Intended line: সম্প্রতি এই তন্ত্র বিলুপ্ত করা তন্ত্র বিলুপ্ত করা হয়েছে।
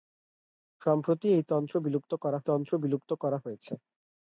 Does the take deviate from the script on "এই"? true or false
false